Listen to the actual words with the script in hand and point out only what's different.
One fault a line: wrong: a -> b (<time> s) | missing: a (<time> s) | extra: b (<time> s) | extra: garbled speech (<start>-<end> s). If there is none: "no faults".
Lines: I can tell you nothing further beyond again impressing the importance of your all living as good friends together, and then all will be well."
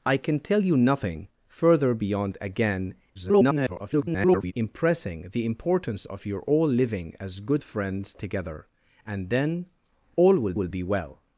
extra: garbled speech (3.1-4.5 s)
extra: will (10.5 s)